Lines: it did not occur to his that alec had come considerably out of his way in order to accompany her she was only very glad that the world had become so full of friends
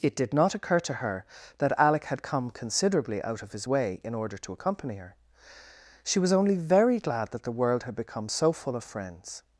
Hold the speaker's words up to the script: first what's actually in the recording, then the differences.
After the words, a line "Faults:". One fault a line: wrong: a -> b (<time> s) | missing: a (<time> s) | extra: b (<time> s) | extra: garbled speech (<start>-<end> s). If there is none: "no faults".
it did not occur to her that alec had come considerably out of his way in order to accompany her she was only very glad that the world had become so full of friends
Faults:
wrong: his -> her (0.9 s)